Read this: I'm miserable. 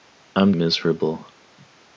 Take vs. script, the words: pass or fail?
pass